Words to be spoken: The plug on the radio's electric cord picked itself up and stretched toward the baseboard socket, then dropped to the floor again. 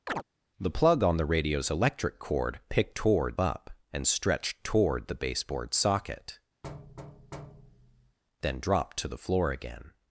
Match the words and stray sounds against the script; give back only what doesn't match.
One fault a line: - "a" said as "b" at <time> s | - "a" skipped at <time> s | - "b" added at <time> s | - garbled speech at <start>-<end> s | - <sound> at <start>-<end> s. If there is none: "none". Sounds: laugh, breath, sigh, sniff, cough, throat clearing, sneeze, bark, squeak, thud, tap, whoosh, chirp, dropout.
- chirp at 0.1-0.2 s
- "itself" said as "toward" at 3.0 s
- thud at 6.6-8.2 s